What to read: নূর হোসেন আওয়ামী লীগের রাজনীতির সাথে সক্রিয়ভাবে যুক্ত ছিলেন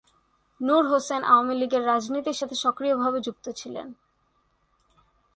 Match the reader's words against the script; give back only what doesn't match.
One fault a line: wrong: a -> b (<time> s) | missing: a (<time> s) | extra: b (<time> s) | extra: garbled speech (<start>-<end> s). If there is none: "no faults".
no faults